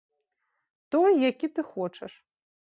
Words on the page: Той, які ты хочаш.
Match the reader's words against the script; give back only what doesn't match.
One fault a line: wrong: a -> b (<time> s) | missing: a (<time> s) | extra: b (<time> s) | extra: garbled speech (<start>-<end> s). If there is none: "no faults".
no faults